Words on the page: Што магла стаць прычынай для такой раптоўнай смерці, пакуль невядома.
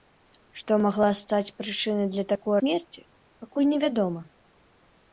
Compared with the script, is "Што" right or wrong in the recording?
right